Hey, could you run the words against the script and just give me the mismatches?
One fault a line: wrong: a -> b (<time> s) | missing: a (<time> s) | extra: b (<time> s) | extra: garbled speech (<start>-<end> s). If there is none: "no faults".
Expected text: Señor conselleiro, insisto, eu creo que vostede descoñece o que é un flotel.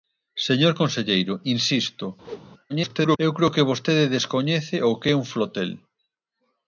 extra: garbled speech (2.7-3.2 s)